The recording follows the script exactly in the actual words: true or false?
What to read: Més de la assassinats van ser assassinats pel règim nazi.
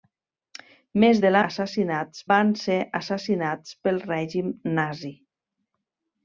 true